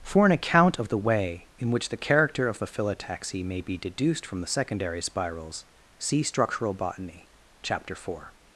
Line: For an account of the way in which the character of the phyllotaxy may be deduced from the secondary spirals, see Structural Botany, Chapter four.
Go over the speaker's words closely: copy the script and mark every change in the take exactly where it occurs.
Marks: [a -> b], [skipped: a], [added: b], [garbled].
For an account of the way in which the character of the phyllotaxy may be deduced from the secondary spirals, see Structural Botany, Chapter four.